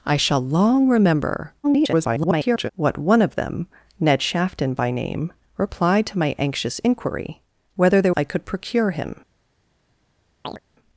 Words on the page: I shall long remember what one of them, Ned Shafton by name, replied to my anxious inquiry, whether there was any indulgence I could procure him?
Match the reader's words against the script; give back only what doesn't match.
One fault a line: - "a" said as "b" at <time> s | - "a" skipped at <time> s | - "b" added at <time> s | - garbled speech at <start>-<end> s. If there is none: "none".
- garbled speech at 1.6-2.7 s
- "was any indulgence" skipped at 8.1 s